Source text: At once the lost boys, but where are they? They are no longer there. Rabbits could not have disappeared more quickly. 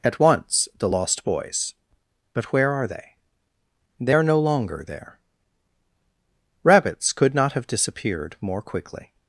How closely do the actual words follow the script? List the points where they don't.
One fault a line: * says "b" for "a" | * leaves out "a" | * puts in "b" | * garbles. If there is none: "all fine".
all fine